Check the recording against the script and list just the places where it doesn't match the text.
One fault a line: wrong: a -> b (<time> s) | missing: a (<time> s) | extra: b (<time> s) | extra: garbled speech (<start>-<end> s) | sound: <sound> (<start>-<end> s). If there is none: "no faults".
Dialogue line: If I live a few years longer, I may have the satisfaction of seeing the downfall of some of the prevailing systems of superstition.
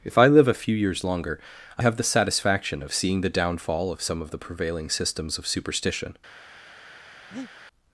missing: may (1.8 s)
sound: breath (7.3-7.5 s)